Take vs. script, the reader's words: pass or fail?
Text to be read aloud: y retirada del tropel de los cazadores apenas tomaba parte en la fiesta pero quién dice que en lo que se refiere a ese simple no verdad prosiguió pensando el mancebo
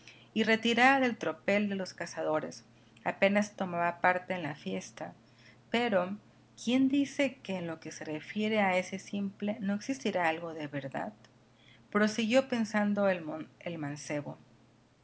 fail